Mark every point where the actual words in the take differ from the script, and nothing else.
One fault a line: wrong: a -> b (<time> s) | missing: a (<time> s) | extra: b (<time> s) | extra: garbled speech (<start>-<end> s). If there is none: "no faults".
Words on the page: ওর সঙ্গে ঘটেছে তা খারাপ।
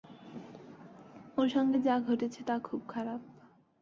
extra: যা (1.8 s)
extra: খুব (2.6 s)